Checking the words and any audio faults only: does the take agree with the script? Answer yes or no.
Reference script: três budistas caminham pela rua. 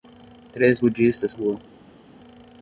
no